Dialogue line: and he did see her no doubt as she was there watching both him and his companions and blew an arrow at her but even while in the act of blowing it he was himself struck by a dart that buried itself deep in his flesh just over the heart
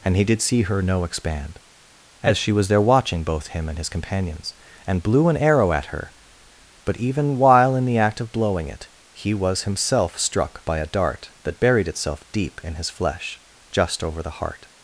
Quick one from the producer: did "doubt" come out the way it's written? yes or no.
no